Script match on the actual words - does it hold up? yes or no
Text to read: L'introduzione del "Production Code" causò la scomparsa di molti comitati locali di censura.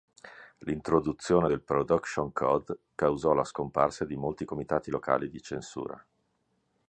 yes